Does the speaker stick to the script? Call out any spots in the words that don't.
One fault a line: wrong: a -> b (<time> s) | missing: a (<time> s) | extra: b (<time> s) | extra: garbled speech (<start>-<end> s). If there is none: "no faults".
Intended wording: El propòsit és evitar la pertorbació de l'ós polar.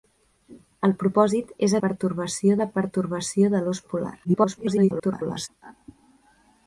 wrong: evitar -> pertorbació (1.9 s)
extra: garbled speech (4.2-5.5 s)